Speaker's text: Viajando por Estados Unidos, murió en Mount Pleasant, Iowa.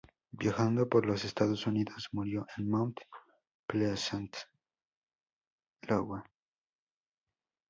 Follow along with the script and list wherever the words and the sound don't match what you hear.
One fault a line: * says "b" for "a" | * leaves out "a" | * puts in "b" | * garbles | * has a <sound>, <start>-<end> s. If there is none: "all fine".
* puts in "los"